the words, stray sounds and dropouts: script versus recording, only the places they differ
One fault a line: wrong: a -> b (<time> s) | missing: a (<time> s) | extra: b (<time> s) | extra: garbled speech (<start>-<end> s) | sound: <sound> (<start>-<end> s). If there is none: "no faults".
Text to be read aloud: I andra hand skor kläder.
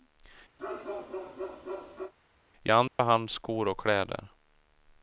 sound: bark (0.6-2.1 s)
sound: dropout (2.9-3.0 s)
extra: och (3.7 s)